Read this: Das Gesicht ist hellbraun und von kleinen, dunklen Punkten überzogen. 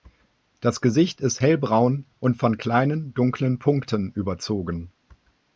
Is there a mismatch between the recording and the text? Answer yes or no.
no